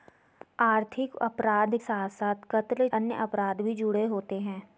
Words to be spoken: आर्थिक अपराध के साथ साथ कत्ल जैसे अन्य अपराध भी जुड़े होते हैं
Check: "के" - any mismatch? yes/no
yes